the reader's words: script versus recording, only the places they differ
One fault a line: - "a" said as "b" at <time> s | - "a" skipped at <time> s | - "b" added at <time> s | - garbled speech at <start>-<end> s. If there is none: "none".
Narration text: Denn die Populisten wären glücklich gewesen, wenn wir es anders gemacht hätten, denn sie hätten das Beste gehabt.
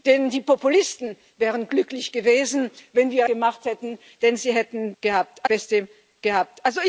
- "es anders" skipped at 3.3 s
- "das" said as "gehabt" at 5.0 s